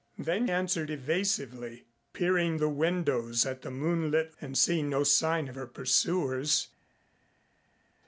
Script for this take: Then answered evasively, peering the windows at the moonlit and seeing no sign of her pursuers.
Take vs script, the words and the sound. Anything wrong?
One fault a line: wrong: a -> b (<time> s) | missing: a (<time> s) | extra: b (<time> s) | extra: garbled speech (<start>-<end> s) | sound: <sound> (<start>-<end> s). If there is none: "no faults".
no faults